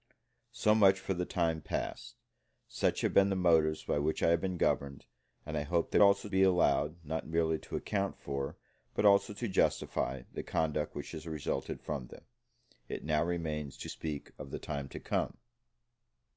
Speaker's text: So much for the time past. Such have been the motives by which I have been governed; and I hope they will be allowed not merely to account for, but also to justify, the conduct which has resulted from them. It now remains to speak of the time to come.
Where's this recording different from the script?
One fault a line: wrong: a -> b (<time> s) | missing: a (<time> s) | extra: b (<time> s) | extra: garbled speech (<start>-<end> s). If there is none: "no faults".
wrong: will -> also (6.0 s)